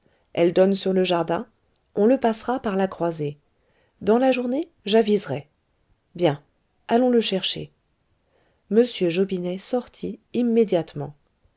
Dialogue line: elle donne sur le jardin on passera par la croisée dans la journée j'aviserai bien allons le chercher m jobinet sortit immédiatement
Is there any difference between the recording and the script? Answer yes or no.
yes